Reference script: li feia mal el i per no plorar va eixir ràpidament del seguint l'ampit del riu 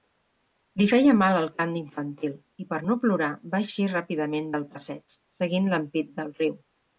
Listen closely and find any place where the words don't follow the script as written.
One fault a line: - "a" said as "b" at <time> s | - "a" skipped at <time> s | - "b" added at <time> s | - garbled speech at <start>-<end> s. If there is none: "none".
- "cant infantil" added at 1.6 s
- "passeig" added at 4.8 s